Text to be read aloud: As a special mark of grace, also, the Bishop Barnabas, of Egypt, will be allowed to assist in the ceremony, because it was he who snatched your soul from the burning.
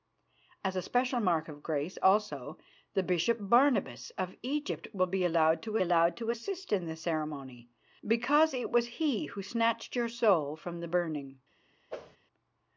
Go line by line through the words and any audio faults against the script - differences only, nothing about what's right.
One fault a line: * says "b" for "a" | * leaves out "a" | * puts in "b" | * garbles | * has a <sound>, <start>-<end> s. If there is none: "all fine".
* puts in "allowed to"
* has a whoosh, 11.9-12.2 s